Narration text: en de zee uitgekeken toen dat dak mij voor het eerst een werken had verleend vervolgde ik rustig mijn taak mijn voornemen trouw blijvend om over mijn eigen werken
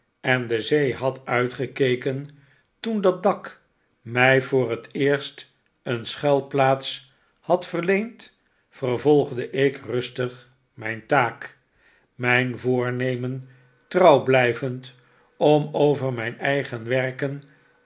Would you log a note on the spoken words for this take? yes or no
yes